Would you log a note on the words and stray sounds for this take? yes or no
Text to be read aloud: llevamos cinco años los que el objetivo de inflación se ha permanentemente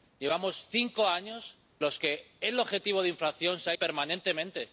no